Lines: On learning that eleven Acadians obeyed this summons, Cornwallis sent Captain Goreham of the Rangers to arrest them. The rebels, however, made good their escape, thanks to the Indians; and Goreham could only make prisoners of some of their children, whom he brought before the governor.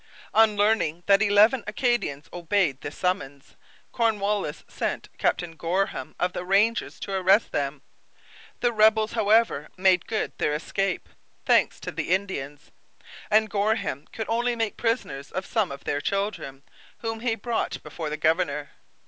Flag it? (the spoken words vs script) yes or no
no